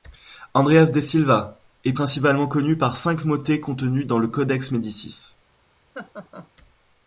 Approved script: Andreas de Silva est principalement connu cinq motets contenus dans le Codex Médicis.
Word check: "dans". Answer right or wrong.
right